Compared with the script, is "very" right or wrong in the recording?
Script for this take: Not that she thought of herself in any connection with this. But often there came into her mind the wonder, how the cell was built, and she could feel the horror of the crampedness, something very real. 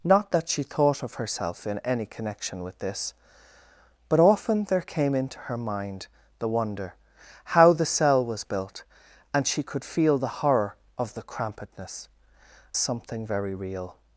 right